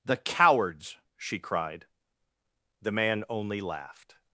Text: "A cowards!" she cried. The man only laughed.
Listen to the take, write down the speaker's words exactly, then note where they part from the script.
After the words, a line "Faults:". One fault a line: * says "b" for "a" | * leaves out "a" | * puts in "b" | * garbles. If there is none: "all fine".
"The cowards!" she cried. The man only laughed.
Faults:
* says "The" for "A"